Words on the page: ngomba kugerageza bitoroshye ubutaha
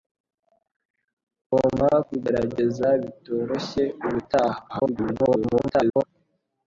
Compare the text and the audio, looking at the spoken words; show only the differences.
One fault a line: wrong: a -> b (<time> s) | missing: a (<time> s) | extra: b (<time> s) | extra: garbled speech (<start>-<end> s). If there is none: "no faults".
extra: garbled speech (4.7-6.0 s)